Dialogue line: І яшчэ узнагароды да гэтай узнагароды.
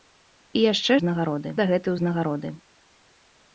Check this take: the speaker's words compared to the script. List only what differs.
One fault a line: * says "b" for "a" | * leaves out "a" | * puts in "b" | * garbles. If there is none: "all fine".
all fine